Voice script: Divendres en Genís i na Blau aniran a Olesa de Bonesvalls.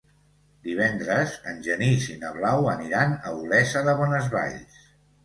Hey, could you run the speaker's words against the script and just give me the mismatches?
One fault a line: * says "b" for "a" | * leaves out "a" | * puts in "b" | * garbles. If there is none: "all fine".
all fine